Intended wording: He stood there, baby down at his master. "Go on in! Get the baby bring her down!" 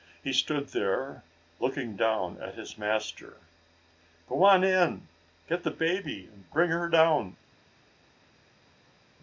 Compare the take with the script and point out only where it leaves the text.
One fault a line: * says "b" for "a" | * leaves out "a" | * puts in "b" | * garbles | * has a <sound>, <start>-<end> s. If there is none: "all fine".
* says "looking" for "baby"
* puts in "and"